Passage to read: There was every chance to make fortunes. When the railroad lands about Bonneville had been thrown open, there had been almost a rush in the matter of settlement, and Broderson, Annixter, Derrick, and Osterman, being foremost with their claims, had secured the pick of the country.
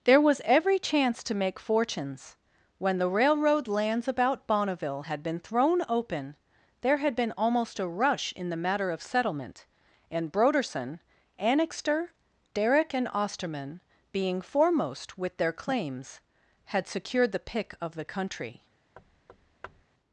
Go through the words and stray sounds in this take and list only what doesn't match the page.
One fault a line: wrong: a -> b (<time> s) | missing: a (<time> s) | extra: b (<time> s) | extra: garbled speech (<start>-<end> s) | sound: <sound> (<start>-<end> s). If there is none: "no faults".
sound: thud (19.0-19.8 s)